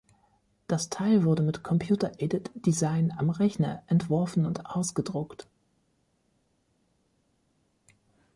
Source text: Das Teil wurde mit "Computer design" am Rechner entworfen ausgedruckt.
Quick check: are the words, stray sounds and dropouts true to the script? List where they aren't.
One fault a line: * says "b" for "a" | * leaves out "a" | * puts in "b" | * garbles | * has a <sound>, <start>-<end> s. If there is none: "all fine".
* puts in "aided"
* puts in "und"